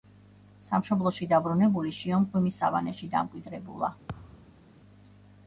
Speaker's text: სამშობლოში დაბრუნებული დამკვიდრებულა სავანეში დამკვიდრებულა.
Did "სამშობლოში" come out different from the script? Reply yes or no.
no